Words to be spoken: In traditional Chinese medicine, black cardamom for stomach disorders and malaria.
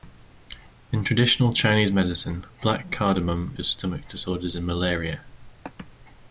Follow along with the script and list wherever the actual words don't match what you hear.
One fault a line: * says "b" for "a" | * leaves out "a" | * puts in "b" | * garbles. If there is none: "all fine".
all fine